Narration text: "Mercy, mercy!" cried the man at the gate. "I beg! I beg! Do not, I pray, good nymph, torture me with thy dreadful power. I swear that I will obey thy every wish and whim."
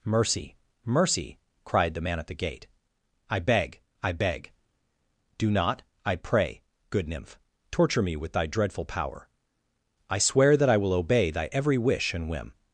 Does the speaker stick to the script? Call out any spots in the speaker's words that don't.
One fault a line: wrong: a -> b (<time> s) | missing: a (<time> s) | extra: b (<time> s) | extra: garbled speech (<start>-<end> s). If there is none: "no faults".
no faults